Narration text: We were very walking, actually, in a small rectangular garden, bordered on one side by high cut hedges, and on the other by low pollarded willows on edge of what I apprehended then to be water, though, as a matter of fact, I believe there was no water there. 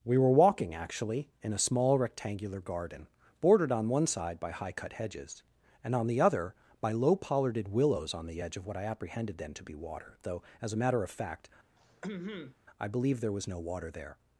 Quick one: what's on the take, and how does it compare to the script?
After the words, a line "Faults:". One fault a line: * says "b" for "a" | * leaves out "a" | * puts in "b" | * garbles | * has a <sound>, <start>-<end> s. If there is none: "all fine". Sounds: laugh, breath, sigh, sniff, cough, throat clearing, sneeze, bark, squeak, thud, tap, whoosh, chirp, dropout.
We were walking, actually, in a small rectangular garden, bordered on one side by high cut hedges, and on the other by low pollarded willows on the edge of what I apprehended then to be water, though, as a matter of fact, I believe there was no water there.
Faults:
* leaves out "very"
* puts in "the"
* has a throat clearing, 11.8-12.6 s